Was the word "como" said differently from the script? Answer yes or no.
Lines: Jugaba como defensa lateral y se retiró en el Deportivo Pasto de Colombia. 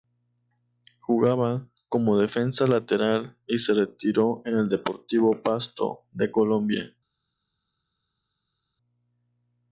no